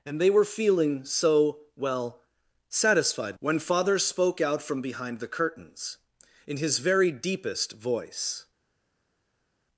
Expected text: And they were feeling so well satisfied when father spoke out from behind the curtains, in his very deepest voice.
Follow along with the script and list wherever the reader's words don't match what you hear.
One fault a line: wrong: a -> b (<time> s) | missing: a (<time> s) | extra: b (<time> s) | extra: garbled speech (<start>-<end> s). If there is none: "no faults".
no faults